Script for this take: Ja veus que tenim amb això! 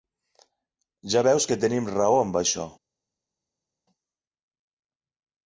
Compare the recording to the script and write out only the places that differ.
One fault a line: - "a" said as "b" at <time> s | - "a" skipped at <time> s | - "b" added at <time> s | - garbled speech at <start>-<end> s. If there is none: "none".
- "raó" added at 2.0 s